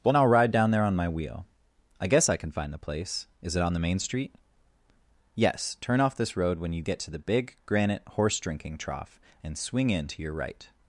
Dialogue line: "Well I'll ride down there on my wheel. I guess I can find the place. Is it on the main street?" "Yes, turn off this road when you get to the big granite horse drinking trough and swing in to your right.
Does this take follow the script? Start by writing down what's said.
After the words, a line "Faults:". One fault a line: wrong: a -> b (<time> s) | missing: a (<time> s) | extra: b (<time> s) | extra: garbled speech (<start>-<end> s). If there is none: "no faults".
"Well I'll ride down there on my wheel. I guess I can find the place. Is it on the main street?" "Yes, turn off this road when you get to the big granite horse drinking trough and swing in to your right.
Faults:
no faults